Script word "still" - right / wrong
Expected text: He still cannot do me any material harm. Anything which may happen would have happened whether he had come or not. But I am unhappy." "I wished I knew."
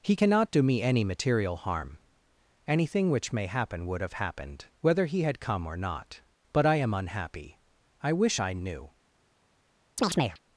wrong